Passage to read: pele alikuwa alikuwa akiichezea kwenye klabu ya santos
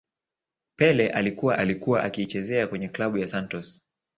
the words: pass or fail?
pass